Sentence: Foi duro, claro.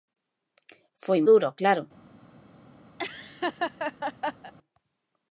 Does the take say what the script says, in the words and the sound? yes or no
no